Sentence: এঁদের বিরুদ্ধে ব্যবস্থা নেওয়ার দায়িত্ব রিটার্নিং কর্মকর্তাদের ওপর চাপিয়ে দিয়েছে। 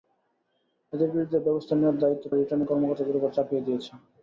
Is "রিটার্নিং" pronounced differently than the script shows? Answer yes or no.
no